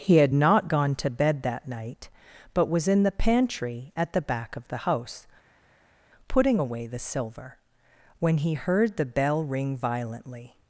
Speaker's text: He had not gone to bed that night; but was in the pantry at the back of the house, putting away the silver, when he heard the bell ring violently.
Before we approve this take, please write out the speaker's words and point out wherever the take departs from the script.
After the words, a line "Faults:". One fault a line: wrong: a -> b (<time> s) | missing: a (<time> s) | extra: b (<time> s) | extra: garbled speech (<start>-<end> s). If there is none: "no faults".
He had not gone to bed that night; but was in the pantry at the back of the house, putting away the silver, when he heard the bell ring violently.
Faults:
no faults